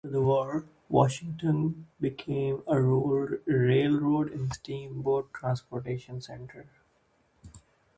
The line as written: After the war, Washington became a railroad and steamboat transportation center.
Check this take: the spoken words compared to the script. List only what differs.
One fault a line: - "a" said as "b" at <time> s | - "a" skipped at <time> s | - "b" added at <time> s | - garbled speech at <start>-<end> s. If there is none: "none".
none